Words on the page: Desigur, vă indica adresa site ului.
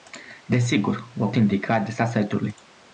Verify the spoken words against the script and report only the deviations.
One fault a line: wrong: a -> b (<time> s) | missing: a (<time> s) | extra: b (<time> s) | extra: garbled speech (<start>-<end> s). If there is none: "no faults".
no faults